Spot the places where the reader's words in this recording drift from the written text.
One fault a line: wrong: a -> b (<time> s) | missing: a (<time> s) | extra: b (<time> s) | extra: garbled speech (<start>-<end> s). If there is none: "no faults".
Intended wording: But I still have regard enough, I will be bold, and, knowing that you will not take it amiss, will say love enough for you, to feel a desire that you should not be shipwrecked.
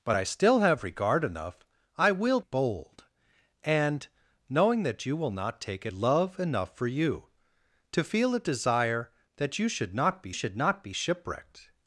missing: be (2.4 s)
missing: amiss will say (5.9 s)
extra: should not be (10.3 s)